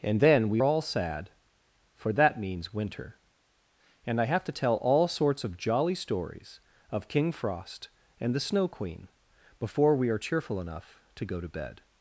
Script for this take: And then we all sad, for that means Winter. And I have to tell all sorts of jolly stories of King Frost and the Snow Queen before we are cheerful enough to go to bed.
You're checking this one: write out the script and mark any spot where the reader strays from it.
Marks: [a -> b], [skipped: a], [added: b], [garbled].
And then we all sad, for that means Winter. And I have to tell all sorts of jolly stories of King Frost and the Snow Queen before we are cheerful enough to go to bed.